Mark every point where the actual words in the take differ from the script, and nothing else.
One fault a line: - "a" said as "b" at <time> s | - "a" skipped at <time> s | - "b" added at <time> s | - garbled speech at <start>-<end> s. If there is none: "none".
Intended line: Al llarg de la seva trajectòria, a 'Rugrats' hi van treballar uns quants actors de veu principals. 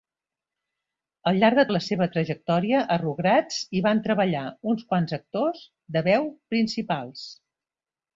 none